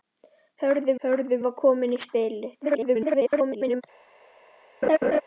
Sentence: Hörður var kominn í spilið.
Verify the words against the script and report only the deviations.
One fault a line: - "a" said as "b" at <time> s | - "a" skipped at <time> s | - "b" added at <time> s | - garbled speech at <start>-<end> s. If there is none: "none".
- "hörður" added at 1.0 s
- garbled speech at 2.6-3.8 s